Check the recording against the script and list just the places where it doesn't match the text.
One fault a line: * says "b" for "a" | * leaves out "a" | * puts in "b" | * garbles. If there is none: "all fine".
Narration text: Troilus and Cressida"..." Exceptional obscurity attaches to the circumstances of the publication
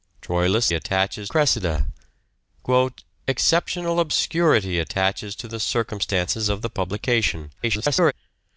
* says "attaches" for "and"
* garbles